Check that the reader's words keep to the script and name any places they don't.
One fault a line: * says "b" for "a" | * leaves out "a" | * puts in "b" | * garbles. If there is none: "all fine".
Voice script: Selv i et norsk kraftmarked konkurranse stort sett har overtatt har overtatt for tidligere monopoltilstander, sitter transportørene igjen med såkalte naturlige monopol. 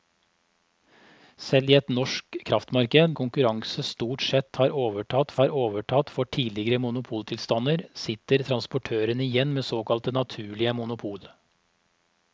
all fine